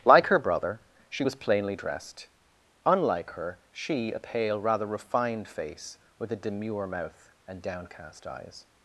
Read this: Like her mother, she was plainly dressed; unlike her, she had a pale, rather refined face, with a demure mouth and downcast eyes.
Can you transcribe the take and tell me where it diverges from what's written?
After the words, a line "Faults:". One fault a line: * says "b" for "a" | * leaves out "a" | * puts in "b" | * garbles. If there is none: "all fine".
Like her brother, she was plainly dressed; unlike her, she a pale, rather refined face, with a demure mouth and downcast eyes.
Faults:
* says "brother" for "mother"
* leaves out "had"